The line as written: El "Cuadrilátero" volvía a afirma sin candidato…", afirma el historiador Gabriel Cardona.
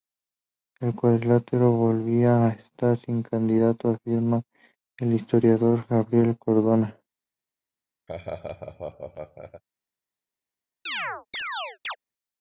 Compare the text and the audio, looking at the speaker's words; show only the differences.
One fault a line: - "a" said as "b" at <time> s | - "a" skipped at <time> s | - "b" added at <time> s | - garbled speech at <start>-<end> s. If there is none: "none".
- "afirma" said as "estar" at 2.5 s